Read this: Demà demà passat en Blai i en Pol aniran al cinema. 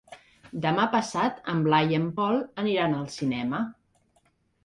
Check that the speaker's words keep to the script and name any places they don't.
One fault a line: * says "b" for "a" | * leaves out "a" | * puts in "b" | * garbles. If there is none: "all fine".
* leaves out "demà"